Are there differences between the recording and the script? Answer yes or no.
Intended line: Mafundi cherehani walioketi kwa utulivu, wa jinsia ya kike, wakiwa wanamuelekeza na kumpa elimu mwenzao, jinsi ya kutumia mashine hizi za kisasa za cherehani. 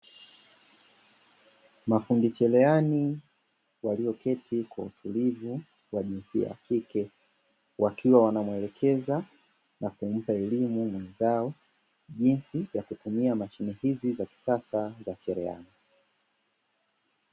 no